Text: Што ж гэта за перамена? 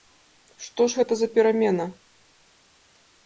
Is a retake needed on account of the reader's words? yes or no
no